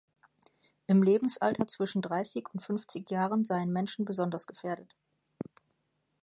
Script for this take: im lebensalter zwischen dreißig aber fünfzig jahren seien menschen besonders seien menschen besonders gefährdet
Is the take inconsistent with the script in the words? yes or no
yes